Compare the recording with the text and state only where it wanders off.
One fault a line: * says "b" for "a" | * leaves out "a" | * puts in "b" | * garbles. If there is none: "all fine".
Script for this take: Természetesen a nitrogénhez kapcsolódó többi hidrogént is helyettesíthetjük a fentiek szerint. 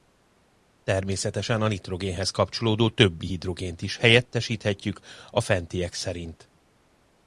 all fine